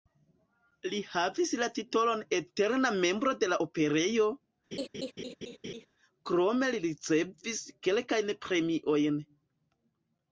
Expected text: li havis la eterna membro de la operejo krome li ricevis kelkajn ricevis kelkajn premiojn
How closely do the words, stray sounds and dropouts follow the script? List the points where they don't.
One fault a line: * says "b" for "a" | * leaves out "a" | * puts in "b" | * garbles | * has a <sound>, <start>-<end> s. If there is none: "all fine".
* puts in "titolon"
* has a laugh, 4.7-5.9 s
* leaves out "ricevis kelkajn"